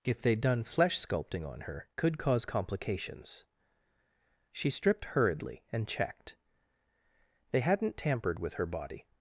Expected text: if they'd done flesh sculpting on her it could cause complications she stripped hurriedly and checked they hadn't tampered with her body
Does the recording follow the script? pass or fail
fail